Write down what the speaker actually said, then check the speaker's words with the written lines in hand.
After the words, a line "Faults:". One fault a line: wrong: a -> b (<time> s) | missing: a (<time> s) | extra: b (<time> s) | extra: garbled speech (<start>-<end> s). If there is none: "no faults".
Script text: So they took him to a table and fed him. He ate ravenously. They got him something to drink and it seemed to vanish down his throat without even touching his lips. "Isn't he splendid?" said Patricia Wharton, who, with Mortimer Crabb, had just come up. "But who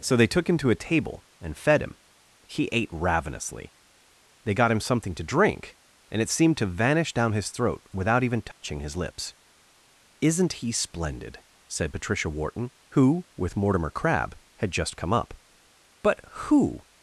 So they took him to a table and fed him. He ate ravenously. They got him something to drink and it seemed to vanish down his throat without even touching his lips. "Isn't he splendid?" said Patricia Wharton, who, with Mortimer Crabb, had just come up. "But who
Faults:
no faults